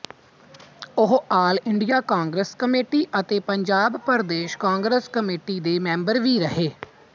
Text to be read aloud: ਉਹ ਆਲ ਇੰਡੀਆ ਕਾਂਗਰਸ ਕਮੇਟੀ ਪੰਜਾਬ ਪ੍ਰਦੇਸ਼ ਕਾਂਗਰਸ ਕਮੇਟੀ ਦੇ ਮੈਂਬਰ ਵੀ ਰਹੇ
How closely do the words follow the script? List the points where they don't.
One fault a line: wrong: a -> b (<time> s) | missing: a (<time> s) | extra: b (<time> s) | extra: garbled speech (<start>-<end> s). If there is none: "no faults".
extra: ਅਤੇ (3.2 s)